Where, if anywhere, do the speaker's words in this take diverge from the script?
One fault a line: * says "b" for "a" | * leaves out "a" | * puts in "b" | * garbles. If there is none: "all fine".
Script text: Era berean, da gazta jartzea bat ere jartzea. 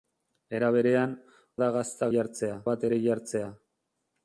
all fine